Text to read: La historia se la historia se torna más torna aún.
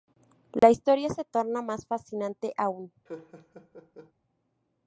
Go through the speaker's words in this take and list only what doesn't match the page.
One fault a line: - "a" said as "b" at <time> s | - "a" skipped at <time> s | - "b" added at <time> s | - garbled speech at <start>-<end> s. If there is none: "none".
- "la historia se" skipped at 1.3 s
- "torna" said as "fascinante" at 1.9 s